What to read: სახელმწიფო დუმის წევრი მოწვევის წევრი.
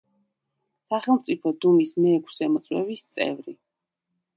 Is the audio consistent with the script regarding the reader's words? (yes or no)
no